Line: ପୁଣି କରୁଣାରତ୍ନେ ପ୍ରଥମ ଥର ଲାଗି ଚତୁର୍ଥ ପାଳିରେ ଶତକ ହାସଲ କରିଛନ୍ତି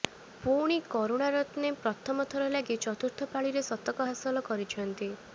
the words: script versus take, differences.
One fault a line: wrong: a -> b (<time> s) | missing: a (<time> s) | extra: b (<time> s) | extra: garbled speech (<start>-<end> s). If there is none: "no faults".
no faults